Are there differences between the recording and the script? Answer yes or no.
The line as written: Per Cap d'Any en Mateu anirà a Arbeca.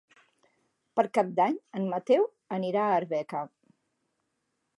no